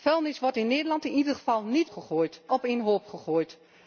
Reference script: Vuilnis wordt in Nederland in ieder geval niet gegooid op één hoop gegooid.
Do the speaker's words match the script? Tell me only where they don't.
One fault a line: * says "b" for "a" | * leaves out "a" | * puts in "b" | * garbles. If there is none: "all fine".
all fine